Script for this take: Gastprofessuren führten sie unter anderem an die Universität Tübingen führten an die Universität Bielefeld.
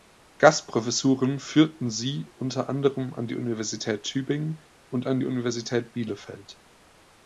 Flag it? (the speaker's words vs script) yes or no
yes